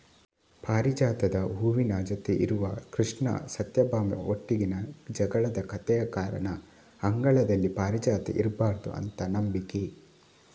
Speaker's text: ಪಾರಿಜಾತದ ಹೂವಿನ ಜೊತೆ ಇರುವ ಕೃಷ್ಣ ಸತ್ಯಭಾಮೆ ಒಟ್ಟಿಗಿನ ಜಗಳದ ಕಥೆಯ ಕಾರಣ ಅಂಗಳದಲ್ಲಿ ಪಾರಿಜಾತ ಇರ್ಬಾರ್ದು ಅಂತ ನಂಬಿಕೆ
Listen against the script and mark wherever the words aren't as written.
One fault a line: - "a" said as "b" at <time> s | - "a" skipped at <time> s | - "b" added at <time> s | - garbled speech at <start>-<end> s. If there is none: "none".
none